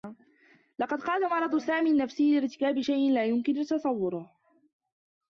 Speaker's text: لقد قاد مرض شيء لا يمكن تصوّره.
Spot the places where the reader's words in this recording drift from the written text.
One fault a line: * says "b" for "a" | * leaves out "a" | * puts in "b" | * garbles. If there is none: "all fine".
* puts in "سامي النّفسي لارتكاب"